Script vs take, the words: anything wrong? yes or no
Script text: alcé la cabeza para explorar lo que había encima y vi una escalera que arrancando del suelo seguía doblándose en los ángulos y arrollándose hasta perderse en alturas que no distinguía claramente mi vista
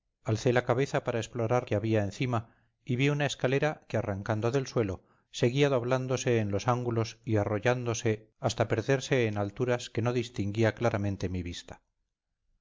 yes